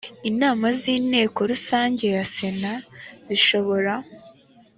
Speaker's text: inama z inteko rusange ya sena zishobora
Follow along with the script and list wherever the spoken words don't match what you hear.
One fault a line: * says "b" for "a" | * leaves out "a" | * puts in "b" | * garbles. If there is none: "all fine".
all fine